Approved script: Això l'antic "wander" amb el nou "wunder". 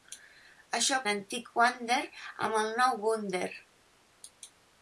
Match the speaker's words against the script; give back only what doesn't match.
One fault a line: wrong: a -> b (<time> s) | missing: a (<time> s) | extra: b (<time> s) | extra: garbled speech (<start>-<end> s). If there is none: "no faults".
no faults